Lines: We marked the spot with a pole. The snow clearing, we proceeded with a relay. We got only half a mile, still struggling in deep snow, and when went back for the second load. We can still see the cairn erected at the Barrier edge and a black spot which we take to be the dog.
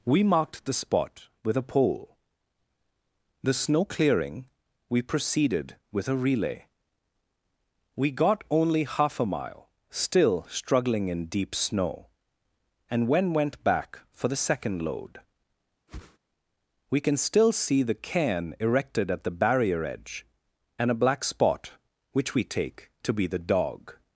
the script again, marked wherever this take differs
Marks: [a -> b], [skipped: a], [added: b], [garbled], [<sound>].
We marked the spot with a pole. The snow clearing, we proceeded with a relay. We got only half a mile, still struggling in deep snow, and when went back for the second load. [whoosh] We can still see the cairn erected at the Barrier edge and a black spot which we take to be the dog.